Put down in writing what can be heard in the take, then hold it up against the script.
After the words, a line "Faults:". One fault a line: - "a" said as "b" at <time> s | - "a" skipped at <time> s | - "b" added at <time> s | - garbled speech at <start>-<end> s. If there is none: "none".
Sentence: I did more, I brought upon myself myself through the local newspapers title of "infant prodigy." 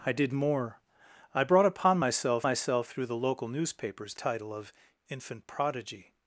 I did more, I brought upon myself myself through the local newspapers title of "infant prodigy."
Faults:
none